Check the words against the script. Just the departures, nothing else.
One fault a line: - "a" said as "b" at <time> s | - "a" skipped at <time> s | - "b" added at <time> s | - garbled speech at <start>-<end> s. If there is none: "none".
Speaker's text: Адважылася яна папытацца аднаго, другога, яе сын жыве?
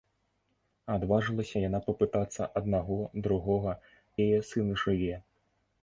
none